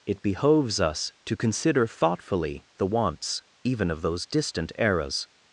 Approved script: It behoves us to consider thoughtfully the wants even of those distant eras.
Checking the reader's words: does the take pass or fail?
pass